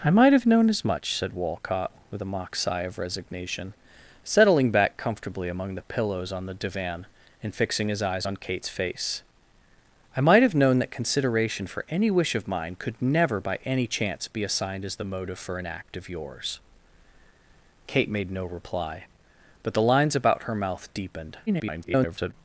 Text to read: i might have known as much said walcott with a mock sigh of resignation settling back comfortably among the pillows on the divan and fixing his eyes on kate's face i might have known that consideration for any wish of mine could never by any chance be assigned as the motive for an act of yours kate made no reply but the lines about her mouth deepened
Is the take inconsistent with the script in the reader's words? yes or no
yes